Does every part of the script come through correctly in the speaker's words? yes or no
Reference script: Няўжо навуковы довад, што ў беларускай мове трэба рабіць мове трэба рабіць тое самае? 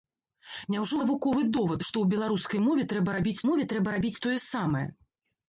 yes